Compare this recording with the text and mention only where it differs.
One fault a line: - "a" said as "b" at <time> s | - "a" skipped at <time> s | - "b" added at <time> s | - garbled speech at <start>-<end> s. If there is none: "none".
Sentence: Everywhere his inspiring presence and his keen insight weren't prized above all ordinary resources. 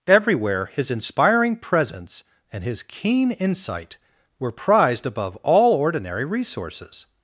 - "weren't" said as "were" at 4.4 s